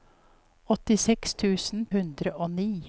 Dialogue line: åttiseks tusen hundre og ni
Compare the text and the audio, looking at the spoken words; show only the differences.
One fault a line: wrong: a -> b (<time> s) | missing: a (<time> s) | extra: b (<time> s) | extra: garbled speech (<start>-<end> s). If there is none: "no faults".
no faults